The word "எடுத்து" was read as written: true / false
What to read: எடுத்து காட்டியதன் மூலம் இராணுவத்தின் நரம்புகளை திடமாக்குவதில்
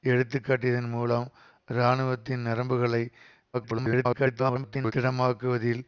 true